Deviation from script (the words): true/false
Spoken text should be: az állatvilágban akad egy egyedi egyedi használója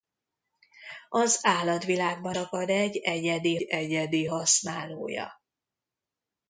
false